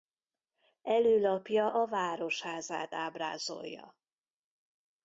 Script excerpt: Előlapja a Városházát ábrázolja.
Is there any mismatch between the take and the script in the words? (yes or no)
no